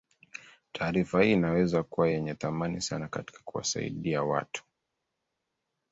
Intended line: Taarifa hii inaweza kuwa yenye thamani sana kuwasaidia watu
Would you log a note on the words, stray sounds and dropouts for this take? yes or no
yes